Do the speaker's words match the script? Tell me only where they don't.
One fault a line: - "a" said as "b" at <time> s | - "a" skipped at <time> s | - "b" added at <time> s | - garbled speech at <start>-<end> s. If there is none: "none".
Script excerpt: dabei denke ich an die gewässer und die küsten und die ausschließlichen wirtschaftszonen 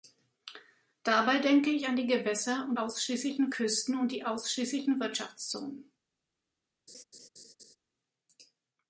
- "die" said as "ausschließlichen" at 2.8 s